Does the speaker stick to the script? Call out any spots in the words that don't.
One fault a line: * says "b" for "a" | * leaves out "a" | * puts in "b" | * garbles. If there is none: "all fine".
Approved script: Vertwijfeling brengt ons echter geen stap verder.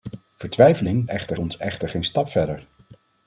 * says "echter" for "brengt"